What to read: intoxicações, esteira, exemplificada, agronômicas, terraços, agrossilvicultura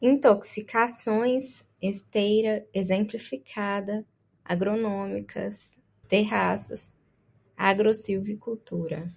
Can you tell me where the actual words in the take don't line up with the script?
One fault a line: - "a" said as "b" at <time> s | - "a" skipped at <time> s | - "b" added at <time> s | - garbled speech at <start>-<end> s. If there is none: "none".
none